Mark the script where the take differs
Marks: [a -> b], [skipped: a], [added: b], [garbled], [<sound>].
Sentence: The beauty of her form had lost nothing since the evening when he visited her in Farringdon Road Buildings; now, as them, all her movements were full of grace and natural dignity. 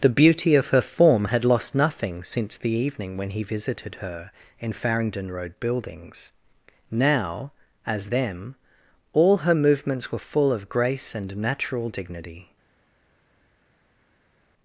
The beauty of her form had lost nothing since the evening when he visited her in Farringdon Road Buildings; now, as them, all her movements were full of grace and natural dignity.